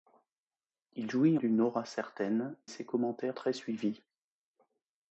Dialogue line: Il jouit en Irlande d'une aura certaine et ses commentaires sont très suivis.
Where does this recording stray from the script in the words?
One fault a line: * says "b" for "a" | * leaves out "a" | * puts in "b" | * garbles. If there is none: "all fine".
* leaves out "en Irlande"
* leaves out "et"
* leaves out "sont"